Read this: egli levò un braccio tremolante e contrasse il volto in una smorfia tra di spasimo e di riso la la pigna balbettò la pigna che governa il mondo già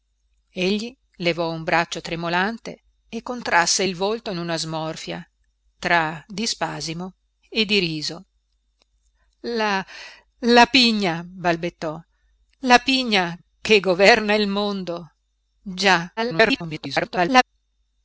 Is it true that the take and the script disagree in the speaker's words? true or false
true